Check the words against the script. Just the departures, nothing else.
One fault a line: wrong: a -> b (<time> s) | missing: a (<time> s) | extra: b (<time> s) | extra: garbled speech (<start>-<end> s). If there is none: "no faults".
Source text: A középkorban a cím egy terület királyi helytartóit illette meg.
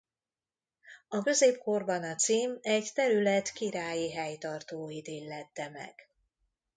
no faults